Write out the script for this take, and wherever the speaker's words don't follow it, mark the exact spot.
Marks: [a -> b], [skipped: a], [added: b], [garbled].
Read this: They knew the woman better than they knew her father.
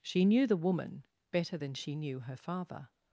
[They -> She] knew the woman better than [they -> she] knew her father.